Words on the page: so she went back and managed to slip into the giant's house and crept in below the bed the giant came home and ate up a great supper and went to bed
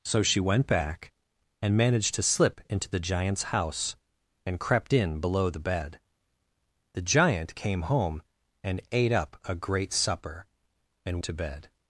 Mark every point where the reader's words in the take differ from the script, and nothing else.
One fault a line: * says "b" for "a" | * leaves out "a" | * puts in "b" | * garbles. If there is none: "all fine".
* leaves out "went"